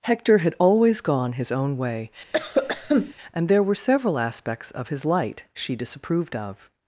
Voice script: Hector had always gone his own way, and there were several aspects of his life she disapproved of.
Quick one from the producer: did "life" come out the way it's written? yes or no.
no